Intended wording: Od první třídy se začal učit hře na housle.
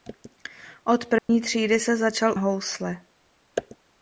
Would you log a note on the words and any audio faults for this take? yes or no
yes